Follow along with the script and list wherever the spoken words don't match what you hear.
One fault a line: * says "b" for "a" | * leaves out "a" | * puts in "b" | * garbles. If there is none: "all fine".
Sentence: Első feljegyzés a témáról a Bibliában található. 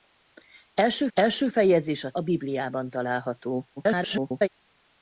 * puts in "első"
* leaves out "témáról"
* garbles